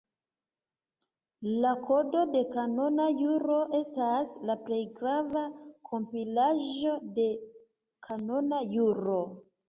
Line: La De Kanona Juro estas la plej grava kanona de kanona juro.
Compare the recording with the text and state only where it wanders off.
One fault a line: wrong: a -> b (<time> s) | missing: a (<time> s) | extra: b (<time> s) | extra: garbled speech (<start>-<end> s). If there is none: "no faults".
extra: Kodo (1.8 s)
wrong: kanona -> kompilaĵo (5.9 s)